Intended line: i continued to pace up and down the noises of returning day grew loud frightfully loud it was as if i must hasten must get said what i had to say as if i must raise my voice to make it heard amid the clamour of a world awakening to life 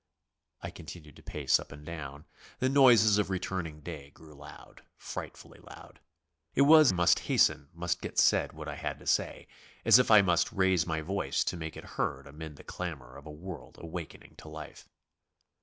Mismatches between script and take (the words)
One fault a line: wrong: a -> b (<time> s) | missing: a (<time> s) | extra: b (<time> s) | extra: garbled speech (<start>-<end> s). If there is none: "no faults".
missing: as if i (6.9 s)